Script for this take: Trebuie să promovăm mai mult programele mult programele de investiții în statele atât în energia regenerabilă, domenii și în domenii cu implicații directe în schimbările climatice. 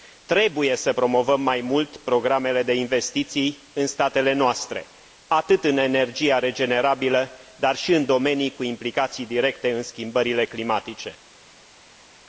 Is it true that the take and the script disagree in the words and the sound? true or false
true